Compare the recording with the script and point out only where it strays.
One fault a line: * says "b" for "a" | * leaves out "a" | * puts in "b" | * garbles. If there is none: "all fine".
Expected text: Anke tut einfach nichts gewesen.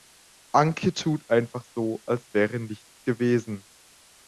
* puts in "so als wäre"